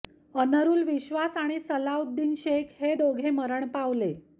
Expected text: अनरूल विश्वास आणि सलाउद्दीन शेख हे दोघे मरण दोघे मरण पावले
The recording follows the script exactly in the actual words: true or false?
false